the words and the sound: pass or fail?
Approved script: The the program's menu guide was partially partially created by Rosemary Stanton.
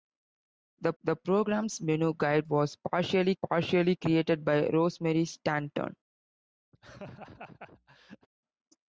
fail